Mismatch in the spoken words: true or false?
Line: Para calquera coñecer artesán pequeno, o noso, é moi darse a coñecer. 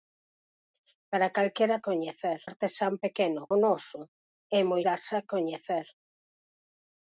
false